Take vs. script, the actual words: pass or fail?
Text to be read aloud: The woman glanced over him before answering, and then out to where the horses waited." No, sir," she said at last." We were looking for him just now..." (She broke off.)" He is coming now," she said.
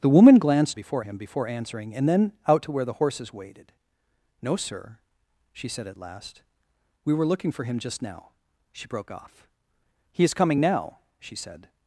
fail